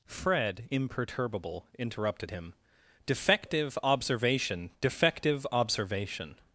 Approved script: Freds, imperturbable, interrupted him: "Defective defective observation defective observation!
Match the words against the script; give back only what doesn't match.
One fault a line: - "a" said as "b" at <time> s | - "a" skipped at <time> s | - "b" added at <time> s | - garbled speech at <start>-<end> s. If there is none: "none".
- "Freds" said as "Fred" at 0.1 s
- "defective" skipped at 3.8 s